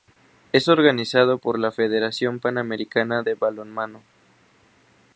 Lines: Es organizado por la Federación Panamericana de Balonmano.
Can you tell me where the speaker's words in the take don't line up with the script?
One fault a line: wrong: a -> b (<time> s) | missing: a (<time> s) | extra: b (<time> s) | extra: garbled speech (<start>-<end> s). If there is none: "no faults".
no faults